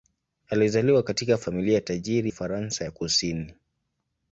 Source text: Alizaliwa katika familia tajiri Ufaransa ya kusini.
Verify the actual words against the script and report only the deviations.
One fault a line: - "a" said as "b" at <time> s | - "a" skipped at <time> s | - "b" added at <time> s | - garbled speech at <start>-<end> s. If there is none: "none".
none